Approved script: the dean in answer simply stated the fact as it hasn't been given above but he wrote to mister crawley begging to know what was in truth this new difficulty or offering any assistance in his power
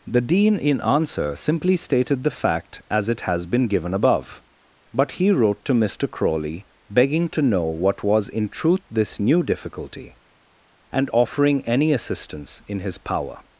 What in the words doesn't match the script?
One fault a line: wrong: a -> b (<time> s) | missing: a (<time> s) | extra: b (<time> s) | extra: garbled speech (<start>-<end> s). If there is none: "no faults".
wrong: hasn't -> has (3.2 s)
wrong: or -> and (10.9 s)